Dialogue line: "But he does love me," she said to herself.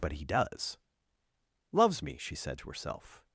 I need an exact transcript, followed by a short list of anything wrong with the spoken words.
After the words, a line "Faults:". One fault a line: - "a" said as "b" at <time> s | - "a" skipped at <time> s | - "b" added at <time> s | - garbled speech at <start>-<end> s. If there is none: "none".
"But he does loves me," she said to herself.
Faults:
- "love" said as "loves" at 1.7 s